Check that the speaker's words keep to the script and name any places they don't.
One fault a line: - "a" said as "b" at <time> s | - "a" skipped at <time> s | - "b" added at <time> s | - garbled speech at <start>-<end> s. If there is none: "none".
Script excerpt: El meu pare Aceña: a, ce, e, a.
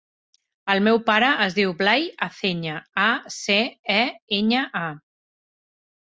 - "es diu Blai" added at 1.5 s
- "enya" added at 4.4 s